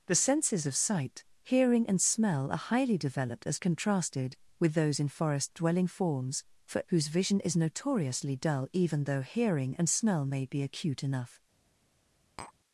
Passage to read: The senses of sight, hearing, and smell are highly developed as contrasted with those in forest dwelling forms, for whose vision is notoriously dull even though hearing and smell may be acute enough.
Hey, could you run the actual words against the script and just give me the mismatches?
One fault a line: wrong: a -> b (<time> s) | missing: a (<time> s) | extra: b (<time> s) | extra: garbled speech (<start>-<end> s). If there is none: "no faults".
no faults